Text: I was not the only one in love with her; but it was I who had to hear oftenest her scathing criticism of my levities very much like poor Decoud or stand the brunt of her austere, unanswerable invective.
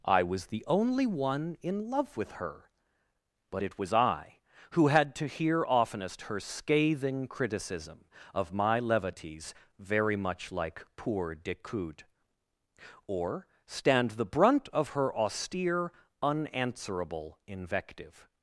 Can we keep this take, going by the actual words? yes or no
no